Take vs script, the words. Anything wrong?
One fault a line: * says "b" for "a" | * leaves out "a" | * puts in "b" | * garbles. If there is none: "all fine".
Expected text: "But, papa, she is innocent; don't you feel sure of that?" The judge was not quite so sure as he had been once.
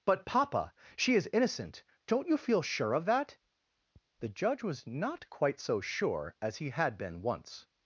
all fine